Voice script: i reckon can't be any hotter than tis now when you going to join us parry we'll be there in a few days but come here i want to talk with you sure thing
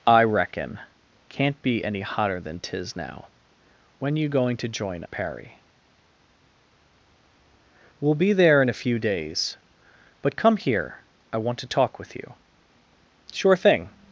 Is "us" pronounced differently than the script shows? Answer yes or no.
yes